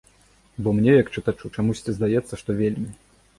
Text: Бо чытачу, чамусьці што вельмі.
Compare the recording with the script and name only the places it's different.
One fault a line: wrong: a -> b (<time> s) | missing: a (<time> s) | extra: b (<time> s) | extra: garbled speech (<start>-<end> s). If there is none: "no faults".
extra: мне як (0.8 s)
extra: здаецца (2.0 s)